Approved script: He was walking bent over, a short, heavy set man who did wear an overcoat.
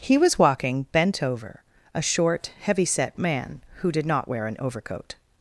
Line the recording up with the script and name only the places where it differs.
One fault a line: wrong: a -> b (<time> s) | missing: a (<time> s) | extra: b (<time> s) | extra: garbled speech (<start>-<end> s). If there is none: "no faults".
extra: not (4.1 s)